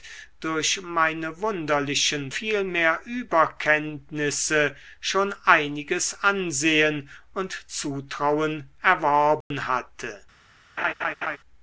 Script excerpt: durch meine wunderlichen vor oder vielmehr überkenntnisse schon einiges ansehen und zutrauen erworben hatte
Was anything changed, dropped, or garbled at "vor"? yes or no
yes